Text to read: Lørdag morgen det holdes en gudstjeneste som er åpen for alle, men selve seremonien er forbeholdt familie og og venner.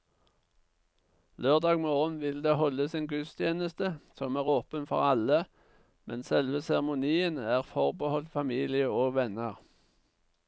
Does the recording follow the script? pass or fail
fail